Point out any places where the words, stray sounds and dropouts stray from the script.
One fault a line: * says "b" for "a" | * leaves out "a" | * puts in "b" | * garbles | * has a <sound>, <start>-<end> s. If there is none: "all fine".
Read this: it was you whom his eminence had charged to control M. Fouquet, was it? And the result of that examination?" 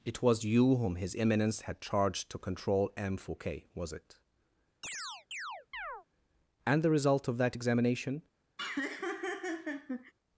* has a chirp, 4.8-6.1 s
* has a laugh, 8.6-10.1 s